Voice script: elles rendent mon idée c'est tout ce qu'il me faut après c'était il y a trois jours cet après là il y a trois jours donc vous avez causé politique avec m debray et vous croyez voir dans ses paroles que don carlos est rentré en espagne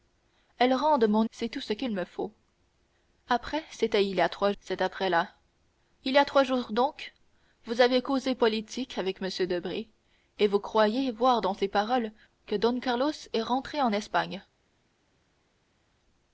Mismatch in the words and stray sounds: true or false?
true